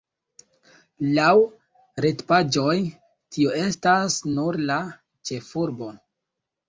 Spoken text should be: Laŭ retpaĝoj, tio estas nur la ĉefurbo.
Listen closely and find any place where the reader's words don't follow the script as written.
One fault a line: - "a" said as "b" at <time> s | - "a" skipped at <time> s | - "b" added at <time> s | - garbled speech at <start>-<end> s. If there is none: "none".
none